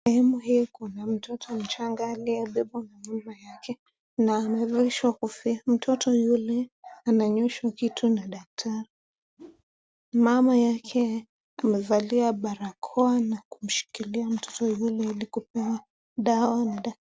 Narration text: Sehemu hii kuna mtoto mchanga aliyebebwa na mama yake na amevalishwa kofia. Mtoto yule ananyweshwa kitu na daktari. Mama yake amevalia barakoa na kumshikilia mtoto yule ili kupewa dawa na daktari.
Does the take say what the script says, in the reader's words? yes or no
yes